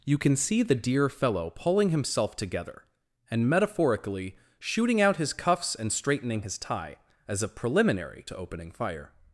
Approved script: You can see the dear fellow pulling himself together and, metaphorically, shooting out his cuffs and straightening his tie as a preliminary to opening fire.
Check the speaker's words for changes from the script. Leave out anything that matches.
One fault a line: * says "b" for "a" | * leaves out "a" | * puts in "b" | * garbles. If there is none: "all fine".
all fine